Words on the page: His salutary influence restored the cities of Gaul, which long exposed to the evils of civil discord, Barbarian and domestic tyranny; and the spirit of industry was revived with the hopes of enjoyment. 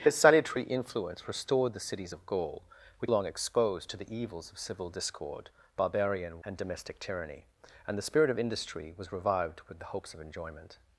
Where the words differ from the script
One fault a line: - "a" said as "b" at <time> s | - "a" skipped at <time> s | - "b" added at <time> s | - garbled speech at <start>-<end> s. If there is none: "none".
none